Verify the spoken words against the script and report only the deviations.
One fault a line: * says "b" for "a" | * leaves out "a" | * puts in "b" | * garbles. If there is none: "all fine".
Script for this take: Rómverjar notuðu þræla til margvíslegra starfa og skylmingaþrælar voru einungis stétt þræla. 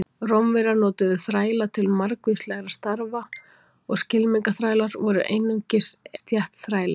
all fine